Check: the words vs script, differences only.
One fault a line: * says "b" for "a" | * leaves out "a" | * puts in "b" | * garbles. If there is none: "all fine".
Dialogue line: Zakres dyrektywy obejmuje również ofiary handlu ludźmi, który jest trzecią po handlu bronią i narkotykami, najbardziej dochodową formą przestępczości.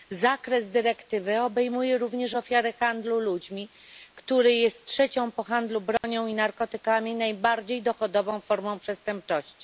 all fine